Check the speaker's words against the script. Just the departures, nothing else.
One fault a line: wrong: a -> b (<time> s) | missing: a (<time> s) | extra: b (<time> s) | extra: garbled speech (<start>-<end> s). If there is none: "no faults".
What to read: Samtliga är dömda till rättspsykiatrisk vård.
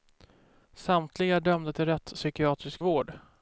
no faults